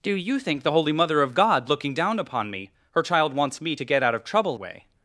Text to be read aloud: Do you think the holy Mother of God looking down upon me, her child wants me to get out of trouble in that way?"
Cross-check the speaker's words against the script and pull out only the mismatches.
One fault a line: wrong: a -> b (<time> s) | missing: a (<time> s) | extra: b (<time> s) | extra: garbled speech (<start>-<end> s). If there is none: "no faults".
missing: in that (4.6 s)